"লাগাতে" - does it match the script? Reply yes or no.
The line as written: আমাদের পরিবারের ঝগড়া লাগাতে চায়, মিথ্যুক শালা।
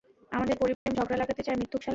yes